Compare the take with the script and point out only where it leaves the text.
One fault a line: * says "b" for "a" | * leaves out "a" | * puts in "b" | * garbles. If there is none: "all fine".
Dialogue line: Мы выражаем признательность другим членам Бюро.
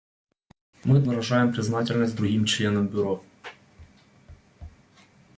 all fine